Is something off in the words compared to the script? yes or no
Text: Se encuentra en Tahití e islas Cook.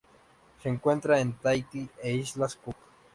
no